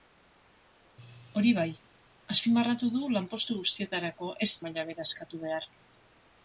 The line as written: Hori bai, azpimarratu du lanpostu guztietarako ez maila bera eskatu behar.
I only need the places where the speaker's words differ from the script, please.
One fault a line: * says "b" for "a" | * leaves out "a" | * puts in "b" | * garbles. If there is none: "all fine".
all fine